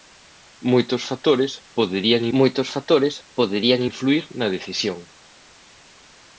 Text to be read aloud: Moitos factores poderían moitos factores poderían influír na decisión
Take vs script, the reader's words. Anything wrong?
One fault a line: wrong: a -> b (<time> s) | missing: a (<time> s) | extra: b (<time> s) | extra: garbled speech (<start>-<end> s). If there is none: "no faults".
no faults